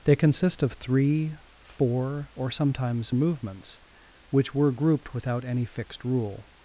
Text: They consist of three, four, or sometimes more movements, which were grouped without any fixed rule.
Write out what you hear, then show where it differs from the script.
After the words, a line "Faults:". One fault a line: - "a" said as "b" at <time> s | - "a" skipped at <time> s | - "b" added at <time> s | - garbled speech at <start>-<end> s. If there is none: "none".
They consist of three, four, or sometimes movements, which were grouped without any fixed rule.
Faults:
- "more" skipped at 3.1 s